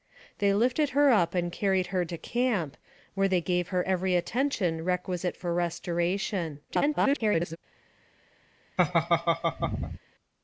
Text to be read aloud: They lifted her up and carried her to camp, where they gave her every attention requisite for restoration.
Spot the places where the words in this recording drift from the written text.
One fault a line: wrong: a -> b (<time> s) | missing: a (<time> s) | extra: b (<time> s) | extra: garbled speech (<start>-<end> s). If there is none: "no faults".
extra: garbled speech (6.7-7.6 s)